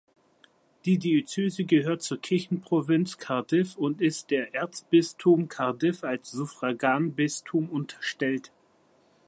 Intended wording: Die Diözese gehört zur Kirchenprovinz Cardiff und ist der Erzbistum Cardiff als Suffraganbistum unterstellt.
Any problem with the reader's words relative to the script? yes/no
no